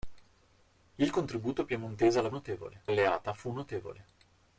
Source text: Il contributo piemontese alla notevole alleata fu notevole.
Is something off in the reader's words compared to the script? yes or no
no